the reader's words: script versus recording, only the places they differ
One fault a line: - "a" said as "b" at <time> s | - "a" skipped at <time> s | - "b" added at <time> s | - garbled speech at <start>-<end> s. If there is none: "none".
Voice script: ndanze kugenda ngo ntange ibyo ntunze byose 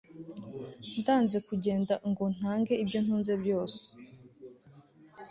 none